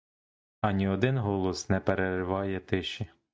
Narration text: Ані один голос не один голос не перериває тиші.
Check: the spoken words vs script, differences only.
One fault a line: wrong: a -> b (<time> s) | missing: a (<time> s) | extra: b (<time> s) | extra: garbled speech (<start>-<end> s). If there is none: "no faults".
missing: один голос не (1.8 s)